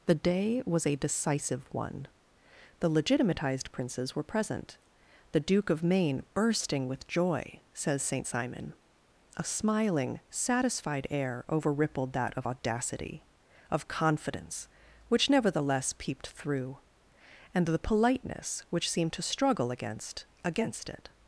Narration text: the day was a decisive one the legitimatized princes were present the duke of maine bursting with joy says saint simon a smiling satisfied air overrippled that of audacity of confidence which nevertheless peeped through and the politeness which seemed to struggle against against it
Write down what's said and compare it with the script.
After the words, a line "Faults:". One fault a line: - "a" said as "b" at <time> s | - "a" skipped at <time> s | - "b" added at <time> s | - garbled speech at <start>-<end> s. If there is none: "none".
the day was a decisive one the legitimatized princes were present the duke of maine bursting with joy says saint simon a smiling satisfied air overrippled that of audacity of confidence which nevertheless peeped through and the politeness which seemed to struggle against against it
Faults:
none